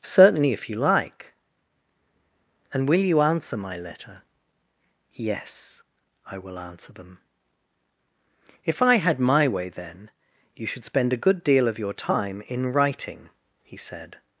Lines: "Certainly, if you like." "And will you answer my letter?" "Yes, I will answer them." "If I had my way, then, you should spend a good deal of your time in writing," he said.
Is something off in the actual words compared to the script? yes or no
no